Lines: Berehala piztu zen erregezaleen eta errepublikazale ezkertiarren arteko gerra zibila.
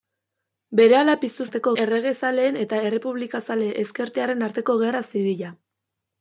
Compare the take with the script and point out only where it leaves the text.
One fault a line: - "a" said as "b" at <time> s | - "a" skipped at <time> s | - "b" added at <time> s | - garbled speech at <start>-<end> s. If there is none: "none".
- "zen" said as "arteko" at 1.5 s